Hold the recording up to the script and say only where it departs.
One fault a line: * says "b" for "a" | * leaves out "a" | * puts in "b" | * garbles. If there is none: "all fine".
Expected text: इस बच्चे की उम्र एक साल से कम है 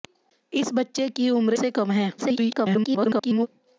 * leaves out "एक साल"
* garbles